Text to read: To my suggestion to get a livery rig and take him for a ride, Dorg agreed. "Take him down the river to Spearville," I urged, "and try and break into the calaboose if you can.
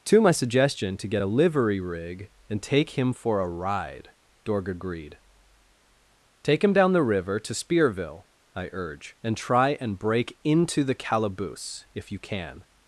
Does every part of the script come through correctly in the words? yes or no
no